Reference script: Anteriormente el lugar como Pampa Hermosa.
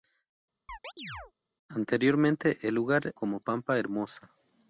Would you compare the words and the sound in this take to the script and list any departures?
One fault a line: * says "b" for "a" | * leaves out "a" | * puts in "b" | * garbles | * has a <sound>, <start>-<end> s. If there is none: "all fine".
* has a chirp, 0.7-1.3 s